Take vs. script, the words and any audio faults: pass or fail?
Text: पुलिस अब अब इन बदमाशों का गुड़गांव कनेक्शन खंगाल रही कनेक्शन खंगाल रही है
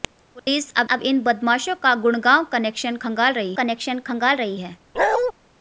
fail